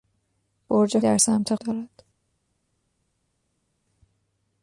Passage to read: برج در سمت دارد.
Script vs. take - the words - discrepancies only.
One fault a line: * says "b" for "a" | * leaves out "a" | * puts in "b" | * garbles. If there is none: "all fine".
all fine